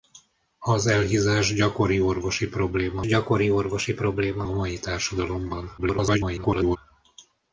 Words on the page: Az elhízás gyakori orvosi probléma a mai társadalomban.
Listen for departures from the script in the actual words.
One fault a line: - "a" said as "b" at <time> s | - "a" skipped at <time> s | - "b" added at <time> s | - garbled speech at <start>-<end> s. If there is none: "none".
- "gyakori orvosi probléma" added at 3.1 s
- garbled speech at 5.8-6.8 s